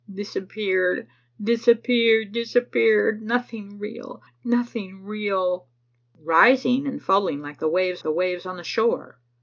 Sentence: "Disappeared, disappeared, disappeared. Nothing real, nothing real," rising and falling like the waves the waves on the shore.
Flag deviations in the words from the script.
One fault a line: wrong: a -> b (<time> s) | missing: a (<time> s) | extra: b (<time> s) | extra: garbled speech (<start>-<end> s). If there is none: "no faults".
no faults